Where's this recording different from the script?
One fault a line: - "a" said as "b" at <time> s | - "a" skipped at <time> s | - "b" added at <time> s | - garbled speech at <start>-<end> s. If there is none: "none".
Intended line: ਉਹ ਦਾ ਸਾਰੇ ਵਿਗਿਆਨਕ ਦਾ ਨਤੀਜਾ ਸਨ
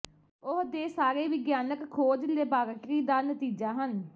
- "ਦਾ" said as "ਦੇ" at 0.7 s
- "ਖੋਜ ਲੈਬਾਰਟਰੀ" added at 1.9 s
- "ਸਨ" said as "ਹਨ" at 3.8 s